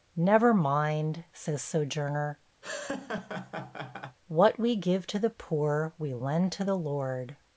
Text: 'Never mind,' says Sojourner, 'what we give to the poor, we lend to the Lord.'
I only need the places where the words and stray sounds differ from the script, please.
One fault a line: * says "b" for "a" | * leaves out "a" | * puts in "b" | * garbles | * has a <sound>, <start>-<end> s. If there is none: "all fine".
* has a laugh, 2.6-4.2 s